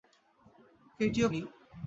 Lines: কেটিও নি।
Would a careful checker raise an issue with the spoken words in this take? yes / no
no